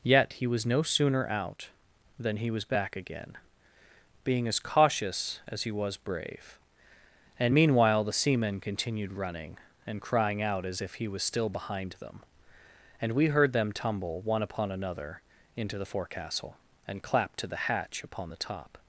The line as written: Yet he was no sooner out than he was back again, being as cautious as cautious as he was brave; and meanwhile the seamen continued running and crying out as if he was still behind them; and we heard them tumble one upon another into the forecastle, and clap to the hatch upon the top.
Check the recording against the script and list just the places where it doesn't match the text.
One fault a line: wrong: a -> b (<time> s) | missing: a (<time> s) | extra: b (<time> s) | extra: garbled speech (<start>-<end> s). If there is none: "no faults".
missing: cautious as (5.6 s)